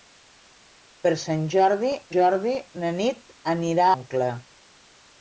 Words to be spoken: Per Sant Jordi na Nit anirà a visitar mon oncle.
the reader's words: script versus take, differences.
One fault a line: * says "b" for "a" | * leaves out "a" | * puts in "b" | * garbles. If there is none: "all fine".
* puts in "Jordi"
* leaves out "a visitar mon"